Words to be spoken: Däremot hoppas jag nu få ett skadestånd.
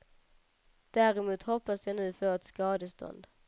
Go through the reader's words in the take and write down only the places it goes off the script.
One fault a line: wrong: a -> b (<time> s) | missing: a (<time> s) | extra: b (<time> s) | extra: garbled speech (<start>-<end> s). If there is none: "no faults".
no faults